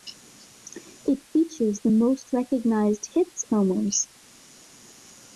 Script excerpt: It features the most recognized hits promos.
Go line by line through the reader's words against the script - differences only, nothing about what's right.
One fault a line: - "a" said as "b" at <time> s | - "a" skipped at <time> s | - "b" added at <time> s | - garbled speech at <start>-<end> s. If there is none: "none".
none